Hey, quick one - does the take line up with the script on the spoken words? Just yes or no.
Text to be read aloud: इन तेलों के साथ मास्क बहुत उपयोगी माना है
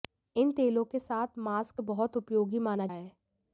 yes